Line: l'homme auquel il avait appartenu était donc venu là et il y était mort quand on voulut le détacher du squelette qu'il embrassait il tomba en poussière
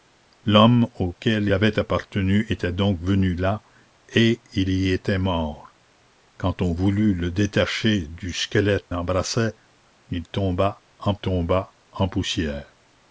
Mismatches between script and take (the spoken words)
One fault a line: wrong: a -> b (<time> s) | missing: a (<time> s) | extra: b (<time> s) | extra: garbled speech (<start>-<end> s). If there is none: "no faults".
missing: il (1.5 s)
missing: qu'il (8.9 s)
extra: tomba en (11.1 s)